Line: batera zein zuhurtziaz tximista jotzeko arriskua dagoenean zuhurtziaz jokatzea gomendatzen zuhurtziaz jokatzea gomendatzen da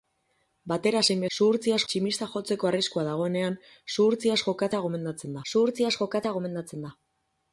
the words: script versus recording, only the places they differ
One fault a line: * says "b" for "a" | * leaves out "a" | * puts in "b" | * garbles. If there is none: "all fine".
all fine